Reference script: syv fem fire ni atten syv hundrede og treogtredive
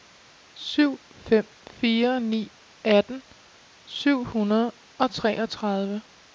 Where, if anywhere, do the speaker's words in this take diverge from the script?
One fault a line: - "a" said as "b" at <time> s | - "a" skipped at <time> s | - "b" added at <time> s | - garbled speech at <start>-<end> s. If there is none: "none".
none